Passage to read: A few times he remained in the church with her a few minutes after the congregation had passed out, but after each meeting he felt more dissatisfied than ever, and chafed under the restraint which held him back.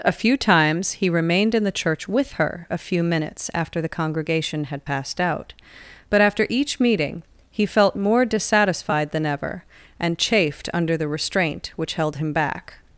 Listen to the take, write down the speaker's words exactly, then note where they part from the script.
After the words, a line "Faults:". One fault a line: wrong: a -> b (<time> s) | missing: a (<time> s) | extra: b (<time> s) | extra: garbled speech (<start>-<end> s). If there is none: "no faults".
A few times he remained in the church with her a few minutes after the congregation had passed out, but after each meeting he felt more dissatisfied than ever, and chafed under the restraint which held him back.
Faults:
no faults